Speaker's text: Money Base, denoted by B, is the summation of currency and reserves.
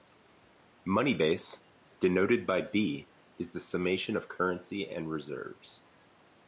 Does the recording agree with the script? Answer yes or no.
yes